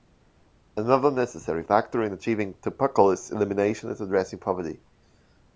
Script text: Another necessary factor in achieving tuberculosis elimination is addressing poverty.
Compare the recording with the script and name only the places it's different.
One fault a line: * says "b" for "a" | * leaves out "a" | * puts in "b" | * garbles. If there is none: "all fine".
all fine